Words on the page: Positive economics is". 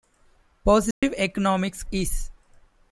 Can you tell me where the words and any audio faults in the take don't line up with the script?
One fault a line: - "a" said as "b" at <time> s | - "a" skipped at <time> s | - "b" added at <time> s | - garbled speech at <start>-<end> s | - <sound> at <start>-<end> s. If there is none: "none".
- dropout at 0.9-1.0 s